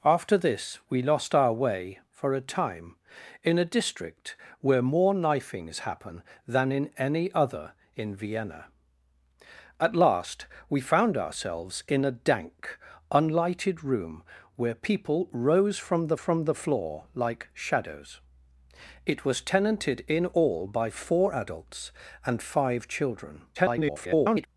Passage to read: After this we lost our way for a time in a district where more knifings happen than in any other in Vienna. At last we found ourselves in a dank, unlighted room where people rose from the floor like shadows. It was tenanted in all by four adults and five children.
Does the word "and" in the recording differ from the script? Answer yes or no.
no